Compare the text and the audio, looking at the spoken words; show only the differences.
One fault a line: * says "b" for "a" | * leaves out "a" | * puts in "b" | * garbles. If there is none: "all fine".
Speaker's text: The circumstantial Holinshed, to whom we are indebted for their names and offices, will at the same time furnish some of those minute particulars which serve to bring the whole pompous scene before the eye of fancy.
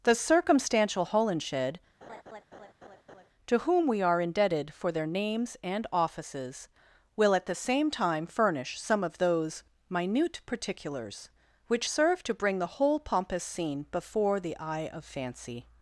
all fine